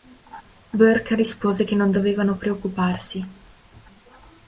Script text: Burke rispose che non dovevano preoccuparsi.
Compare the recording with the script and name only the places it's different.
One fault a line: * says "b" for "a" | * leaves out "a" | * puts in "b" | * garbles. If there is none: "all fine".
all fine